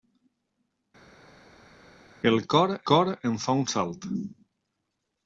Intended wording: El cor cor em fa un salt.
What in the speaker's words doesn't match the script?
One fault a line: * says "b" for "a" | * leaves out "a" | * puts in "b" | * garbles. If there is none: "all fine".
all fine